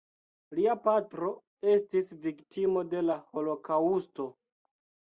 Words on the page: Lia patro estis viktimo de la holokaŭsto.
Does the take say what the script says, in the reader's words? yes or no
yes